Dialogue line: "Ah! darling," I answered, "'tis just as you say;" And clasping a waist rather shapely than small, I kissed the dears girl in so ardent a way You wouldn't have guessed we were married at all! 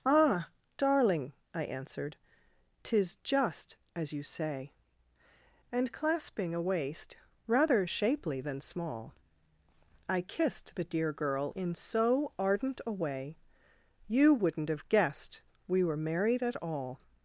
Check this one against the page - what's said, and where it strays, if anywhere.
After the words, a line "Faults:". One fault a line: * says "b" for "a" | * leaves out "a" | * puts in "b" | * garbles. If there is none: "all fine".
"Ah! darling," I answered, "'tis just as you say;" And clasping a waist rather shapely than small, I kissed the dear girl in so ardent a way You wouldn't have guessed we were married at all!
Faults:
* says "dear" for "dears"